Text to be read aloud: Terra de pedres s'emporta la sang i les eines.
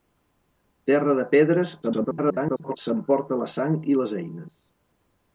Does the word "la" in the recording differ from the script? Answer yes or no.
no